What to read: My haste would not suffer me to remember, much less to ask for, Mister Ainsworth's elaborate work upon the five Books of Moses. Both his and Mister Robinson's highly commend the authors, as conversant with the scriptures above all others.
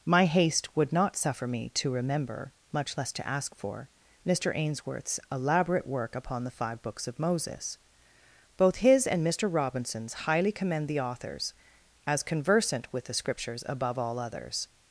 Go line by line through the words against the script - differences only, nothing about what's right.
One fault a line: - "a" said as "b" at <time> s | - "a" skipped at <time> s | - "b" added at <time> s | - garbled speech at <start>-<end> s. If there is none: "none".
none